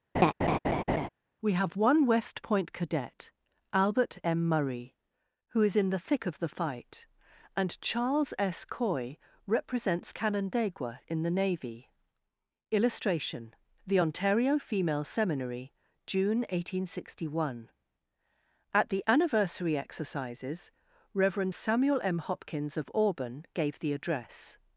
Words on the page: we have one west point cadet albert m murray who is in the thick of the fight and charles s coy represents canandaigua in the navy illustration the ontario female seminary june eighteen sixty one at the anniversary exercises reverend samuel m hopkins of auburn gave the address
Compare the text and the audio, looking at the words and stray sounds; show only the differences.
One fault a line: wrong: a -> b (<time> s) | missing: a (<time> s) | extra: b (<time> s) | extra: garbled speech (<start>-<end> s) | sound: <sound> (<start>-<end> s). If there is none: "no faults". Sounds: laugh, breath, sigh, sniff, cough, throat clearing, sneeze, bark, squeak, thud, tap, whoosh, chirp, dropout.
sound: laugh (0.1-1.1 s)